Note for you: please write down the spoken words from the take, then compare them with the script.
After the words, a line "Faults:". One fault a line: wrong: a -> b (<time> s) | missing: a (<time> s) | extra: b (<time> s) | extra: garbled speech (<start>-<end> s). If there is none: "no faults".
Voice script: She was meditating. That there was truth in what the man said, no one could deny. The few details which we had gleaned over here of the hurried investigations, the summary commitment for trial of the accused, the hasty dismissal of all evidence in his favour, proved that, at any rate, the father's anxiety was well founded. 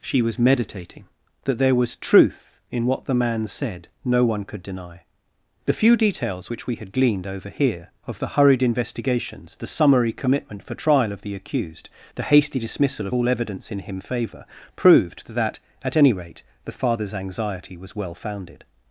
She was meditating. That there was truth in what the man said, no one could deny. The few details which we had gleaned over here of the hurried investigations, the summary commitment for trial of the accused, the hasty dismissal of all evidence in him favour, proved that, at any rate, the father's anxiety was well founded.
Faults:
wrong: his -> him (13.8 s)